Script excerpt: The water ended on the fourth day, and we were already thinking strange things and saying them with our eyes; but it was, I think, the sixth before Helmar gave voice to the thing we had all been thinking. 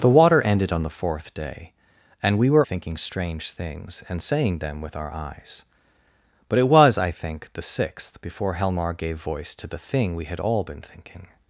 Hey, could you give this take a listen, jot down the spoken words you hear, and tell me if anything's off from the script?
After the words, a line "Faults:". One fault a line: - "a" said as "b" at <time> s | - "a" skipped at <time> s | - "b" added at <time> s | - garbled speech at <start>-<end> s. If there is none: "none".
The water ended on the fourth day, and we were thinking strange things and saying them with our eyes; but it was, I think, the sixth before Helmar gave voice to the thing we had all been thinking.
Faults:
- "already" skipped at 2.7 s